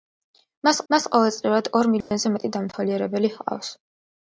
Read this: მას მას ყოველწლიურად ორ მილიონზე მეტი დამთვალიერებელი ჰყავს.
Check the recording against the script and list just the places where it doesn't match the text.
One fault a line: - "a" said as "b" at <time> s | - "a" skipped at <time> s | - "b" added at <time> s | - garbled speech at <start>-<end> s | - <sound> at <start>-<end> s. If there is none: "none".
- dropout at 2.0-2.1 s